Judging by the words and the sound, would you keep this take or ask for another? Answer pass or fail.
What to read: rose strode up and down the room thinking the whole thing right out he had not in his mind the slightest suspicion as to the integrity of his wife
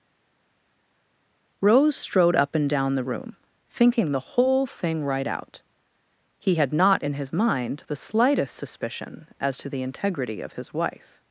pass